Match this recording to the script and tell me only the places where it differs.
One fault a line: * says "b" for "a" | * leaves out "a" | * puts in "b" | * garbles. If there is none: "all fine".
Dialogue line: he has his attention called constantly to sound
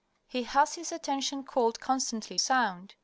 * leaves out "to"